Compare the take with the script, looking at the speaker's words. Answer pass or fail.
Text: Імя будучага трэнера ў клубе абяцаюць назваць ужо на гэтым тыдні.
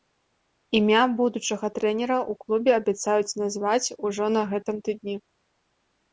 pass